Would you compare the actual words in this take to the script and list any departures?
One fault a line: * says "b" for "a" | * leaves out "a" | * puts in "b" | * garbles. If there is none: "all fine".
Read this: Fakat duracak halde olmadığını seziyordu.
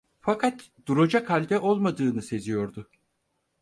all fine